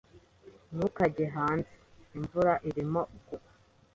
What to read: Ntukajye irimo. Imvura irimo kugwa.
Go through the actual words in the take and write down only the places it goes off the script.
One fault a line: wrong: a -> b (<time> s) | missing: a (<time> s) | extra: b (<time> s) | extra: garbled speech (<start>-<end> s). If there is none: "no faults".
wrong: irimo -> hanze (1.4 s)